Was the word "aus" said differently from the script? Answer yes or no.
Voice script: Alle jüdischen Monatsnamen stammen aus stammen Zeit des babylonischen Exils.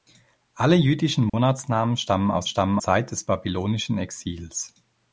no